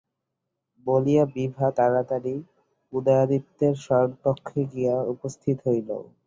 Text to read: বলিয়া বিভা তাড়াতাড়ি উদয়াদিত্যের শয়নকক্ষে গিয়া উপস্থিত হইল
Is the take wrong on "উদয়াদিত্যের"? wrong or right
right